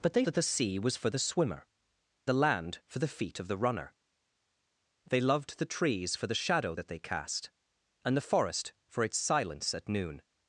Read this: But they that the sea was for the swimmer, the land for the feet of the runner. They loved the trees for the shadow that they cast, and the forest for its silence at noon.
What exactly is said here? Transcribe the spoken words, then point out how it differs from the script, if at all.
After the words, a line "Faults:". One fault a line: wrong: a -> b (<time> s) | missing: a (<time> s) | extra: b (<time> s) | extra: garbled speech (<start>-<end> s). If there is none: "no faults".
But they that the sea was for the swimmer, the land for the feet of the runner. They loved the trees for the shadow that they cast, and the forest for its silence at noon.
Faults:
no faults